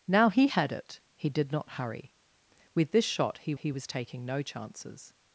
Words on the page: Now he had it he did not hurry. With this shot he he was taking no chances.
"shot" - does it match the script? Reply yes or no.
yes